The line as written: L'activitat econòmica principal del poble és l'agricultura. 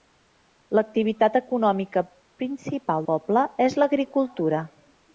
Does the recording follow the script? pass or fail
fail